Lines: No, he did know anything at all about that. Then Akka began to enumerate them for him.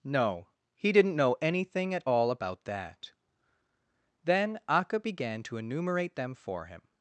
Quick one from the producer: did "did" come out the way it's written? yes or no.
no